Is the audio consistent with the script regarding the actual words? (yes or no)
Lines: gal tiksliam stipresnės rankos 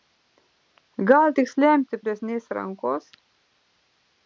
yes